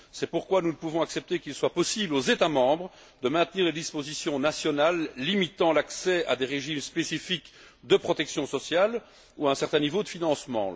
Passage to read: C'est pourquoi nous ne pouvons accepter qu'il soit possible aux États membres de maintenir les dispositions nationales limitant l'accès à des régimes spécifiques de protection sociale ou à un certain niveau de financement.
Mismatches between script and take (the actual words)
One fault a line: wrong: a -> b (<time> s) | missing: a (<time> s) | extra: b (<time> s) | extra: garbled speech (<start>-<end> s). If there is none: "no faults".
no faults